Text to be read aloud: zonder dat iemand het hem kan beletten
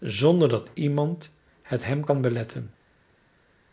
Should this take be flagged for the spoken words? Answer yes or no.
no